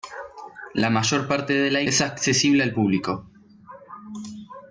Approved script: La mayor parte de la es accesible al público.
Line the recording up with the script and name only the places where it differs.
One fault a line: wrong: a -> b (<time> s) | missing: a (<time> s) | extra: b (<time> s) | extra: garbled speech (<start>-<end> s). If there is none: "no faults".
no faults